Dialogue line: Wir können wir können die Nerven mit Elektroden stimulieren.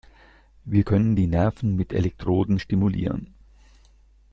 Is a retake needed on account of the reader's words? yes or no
yes